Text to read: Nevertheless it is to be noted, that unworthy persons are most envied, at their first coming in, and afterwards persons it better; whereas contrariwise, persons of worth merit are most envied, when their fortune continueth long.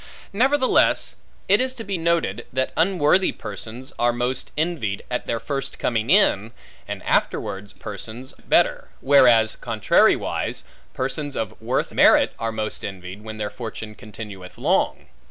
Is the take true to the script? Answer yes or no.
yes